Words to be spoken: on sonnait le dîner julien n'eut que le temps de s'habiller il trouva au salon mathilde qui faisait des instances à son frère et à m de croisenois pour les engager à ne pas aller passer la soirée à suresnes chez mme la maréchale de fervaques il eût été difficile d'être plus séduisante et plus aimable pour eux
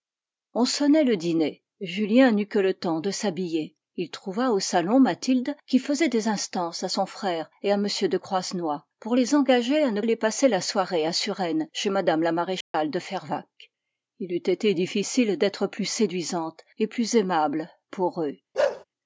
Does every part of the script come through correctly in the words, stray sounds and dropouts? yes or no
no